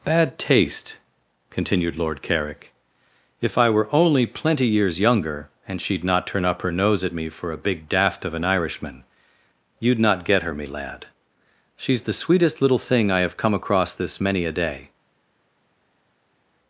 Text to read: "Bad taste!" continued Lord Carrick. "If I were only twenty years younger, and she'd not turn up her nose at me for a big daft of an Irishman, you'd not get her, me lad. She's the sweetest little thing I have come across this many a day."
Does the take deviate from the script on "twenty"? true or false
true